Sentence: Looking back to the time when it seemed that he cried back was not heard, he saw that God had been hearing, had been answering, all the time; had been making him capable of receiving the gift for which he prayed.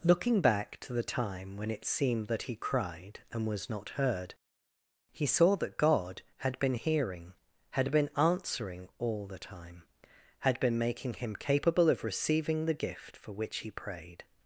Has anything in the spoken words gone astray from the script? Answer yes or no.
yes